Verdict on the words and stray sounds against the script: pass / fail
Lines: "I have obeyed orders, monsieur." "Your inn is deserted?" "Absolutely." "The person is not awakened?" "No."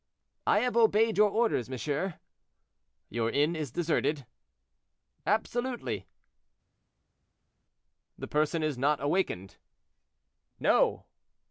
fail